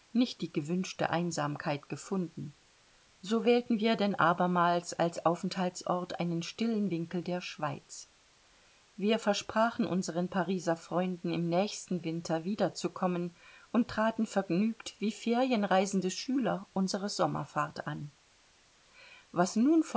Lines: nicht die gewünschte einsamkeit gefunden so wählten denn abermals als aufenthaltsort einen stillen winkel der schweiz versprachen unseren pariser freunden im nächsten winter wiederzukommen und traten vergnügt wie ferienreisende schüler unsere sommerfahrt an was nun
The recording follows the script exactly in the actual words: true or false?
false